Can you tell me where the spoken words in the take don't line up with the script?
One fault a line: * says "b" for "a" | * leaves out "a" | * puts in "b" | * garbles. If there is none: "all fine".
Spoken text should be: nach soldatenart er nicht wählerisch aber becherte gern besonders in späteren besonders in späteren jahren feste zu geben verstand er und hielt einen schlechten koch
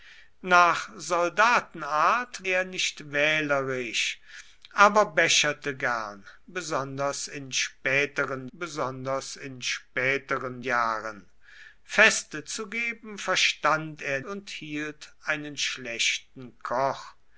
all fine